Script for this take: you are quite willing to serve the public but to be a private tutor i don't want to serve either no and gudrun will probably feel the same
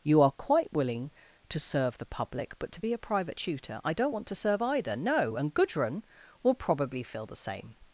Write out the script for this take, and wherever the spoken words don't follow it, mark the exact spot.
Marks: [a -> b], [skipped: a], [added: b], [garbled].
you are quite willing to serve the public but to be a private tutor i don't want to serve either no and gudrun will probably feel the same